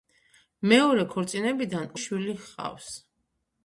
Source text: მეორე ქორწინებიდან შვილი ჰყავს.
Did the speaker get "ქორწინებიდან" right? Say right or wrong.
right